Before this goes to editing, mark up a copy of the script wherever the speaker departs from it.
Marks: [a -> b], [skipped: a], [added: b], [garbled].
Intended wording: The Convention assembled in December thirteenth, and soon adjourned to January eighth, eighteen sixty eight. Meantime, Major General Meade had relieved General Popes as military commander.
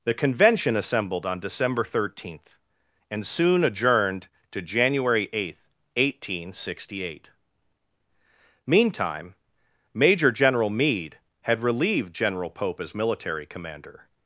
The Convention assembled [in -> on] December thirteenth, and soon adjourned to January eighth, eighteen sixty eight. Meantime, Major General Meade had relieved General [Popes -> Pope] as military commander.